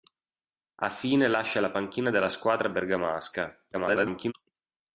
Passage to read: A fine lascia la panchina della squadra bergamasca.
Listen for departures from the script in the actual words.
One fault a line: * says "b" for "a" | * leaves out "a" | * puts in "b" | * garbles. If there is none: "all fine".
* garbles